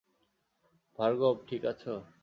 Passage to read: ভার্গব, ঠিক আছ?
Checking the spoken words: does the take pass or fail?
pass